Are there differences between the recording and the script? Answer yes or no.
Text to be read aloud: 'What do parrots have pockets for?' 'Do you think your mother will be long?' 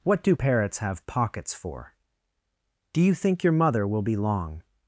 no